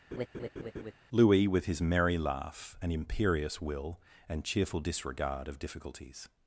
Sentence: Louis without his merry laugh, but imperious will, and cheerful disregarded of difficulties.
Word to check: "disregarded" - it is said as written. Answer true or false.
false